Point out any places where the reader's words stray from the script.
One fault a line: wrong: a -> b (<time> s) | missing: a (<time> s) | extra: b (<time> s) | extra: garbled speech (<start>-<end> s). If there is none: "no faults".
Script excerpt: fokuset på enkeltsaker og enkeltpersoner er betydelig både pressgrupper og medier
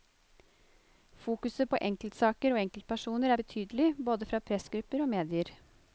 extra: fra (4.3 s)